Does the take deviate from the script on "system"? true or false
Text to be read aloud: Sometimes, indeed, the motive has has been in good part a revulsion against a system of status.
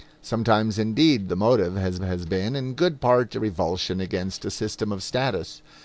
false